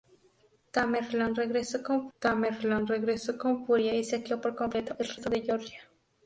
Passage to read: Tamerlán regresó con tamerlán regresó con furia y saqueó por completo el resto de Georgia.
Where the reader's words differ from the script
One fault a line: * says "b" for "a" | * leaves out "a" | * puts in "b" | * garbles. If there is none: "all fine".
all fine